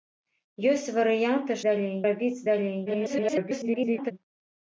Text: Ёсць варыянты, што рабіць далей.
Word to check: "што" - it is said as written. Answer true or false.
false